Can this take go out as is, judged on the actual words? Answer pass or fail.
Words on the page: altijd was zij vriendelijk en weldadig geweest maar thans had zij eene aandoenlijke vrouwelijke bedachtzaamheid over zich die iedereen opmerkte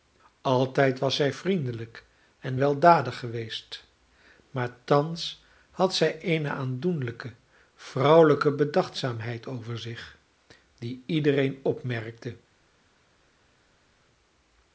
pass